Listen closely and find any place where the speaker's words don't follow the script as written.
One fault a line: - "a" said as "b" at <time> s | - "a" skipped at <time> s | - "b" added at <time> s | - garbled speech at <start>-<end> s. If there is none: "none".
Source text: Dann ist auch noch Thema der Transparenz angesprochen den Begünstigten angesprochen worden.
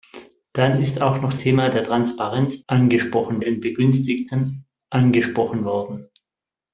none